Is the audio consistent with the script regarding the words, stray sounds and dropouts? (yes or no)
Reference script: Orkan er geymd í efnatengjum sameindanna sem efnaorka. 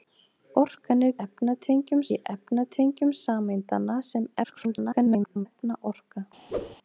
no